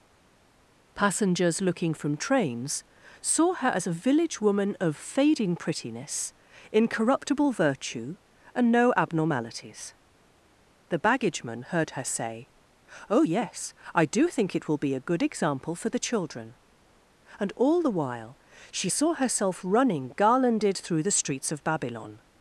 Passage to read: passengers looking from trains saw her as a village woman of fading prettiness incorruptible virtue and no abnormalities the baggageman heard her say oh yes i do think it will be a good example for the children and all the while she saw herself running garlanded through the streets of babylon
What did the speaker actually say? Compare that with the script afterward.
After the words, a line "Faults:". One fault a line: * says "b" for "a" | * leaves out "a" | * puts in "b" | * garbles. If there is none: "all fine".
passengers looking from trains saw her as a village woman of fading prettiness incorruptible virtue and no abnormalities the baggageman heard her say oh yes i do think it will be a good example for the children and all the while she saw herself running garlanded through the streets of babylon
Faults:
all fine